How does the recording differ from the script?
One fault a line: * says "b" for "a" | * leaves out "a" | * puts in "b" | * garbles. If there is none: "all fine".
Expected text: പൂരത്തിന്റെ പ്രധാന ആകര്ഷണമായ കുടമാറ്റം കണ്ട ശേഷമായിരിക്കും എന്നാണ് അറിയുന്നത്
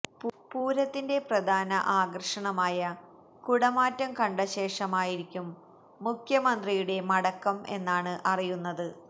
* puts in "മുഖ്യമന്ത്രിയുടെ മടക്കം"